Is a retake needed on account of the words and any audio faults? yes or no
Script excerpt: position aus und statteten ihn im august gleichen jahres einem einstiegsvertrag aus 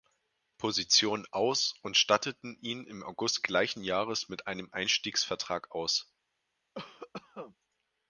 yes